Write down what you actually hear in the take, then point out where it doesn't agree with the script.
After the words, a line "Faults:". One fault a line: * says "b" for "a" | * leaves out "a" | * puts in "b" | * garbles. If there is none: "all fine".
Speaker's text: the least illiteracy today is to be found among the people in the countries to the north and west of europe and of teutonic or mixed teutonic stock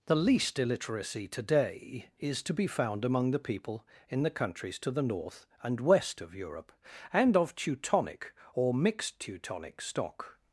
the least illiteracy today is to be found among the people in the countries to the north and west of europe and of teutonic or mixed teutonic stock
Faults:
all fine